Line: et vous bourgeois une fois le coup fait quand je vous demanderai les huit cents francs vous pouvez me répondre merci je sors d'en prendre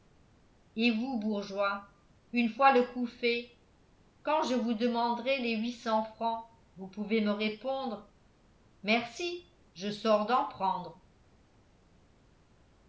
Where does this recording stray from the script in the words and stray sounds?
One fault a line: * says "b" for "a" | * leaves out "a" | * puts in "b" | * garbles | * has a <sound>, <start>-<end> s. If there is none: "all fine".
all fine